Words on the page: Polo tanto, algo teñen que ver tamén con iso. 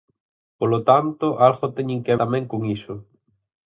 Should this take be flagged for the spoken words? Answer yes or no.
yes